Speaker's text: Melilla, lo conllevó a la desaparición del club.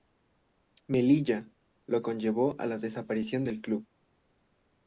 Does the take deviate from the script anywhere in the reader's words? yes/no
no